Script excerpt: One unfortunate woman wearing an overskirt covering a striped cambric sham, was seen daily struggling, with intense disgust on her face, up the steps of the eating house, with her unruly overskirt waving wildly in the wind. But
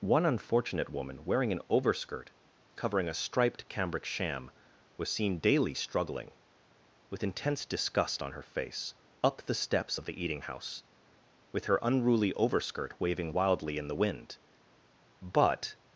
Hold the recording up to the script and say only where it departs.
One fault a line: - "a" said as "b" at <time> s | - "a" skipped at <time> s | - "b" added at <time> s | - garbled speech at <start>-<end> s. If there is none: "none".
none